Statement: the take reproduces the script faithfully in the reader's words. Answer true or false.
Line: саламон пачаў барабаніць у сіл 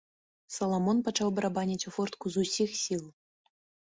false